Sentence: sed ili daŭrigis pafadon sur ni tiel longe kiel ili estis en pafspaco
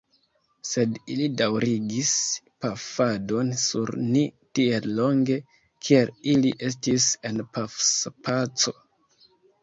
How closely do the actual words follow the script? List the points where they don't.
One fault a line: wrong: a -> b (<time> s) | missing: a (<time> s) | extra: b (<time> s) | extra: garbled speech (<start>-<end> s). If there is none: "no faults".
no faults